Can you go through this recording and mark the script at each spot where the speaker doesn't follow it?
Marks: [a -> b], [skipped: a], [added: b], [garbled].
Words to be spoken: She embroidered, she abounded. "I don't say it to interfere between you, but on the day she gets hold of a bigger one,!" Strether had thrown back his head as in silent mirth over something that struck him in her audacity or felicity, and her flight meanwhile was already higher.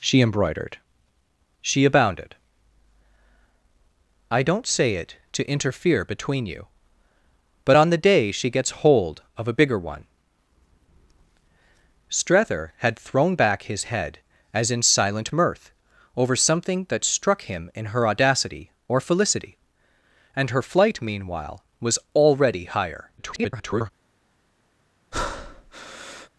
She embroidered, she abounded. "I don't say it to interfere between you, but on the day she gets hold of a bigger one,!" Strether had thrown back his head as in silent mirth over something that struck him in her audacity or felicity, and her flight meanwhile was already higher. [garbled]